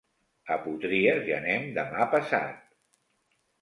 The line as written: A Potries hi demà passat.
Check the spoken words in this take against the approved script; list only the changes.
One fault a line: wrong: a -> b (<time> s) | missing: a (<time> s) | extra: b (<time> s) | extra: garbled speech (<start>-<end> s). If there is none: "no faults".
extra: anem (1.4 s)